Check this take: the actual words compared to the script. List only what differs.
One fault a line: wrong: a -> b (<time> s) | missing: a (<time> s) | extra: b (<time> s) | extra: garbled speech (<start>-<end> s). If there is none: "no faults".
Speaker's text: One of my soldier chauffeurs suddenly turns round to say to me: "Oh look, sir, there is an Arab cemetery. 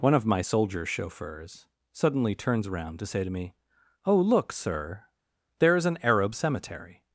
wrong: round -> around (2.7 s)